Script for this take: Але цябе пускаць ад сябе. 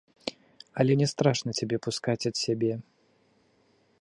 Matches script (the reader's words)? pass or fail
fail